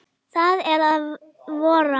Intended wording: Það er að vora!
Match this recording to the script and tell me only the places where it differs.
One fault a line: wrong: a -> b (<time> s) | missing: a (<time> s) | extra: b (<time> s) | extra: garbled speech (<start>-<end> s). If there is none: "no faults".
no faults